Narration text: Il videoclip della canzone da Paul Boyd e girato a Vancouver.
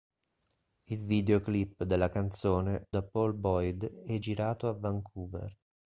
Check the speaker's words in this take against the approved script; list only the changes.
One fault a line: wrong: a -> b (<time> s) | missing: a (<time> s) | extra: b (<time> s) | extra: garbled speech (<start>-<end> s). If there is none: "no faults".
no faults